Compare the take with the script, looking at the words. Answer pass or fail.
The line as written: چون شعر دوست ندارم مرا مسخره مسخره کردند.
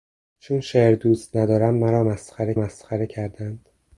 pass